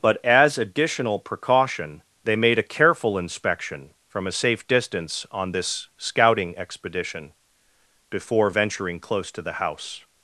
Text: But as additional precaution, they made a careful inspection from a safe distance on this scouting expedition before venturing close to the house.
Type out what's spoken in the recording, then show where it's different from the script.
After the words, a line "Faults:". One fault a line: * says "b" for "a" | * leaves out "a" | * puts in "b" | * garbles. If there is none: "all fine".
But as additional precaution, they made a careful inspection from a safe distance on this scouting expedition before venturing close to the house.
Faults:
all fine